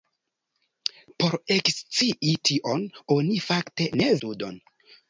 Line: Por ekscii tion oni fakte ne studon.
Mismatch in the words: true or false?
false